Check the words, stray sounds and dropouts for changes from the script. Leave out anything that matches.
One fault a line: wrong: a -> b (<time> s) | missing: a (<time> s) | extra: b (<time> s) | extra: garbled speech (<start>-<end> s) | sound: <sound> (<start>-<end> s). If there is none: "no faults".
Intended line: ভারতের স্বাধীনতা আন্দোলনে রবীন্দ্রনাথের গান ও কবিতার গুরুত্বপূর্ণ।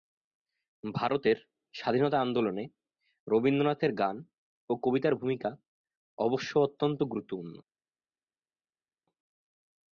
extra: ভূমিকা অবশ্য অত্যন্ত (5.2 s)